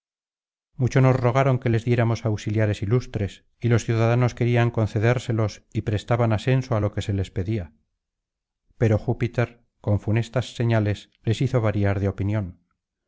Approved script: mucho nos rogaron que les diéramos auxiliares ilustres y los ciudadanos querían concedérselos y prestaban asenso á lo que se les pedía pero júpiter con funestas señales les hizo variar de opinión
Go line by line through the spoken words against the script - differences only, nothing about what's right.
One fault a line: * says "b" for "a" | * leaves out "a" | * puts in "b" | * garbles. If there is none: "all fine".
all fine